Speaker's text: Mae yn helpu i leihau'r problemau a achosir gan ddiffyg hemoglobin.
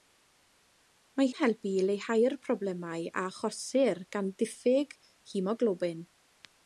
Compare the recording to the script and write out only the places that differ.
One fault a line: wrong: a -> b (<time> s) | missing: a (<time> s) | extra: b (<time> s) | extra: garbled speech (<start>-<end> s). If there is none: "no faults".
no faults